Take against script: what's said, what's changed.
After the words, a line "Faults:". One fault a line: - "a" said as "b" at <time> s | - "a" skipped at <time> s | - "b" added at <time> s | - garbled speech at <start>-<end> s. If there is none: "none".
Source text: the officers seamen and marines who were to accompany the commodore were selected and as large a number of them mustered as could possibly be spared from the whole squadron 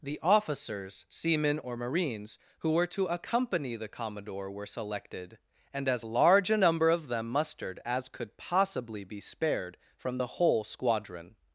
the officers seamen or marines who were to accompany the commodore were selected and as large a number of them mustered as could possibly be spared from the whole squadron
Faults:
- "and" said as "or" at 1.6 s